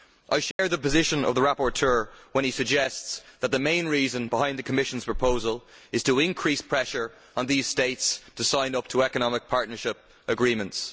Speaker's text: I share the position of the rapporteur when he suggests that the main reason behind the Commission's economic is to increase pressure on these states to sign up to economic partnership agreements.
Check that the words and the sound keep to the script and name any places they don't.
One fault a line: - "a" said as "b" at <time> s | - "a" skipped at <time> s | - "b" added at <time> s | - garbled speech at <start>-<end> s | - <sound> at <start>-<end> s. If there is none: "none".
- dropout at 0.5-0.6 s
- "economic" said as "proposal" at 5.0 s